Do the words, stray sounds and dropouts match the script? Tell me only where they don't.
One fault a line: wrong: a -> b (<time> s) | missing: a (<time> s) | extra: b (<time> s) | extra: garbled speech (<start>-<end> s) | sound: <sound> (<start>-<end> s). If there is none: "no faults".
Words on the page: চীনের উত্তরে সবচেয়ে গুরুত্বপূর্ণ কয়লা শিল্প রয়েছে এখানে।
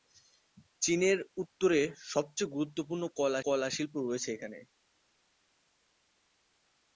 extra: কয়লা (3.4 s)